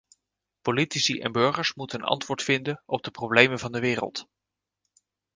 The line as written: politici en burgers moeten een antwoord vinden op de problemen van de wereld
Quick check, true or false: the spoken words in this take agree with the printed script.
true